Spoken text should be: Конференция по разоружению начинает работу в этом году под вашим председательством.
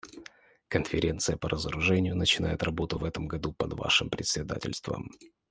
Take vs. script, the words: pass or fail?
pass